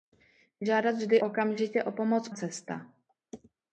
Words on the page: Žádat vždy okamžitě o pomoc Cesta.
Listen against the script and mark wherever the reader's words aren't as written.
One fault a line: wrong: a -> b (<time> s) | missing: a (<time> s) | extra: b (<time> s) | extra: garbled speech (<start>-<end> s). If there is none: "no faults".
no faults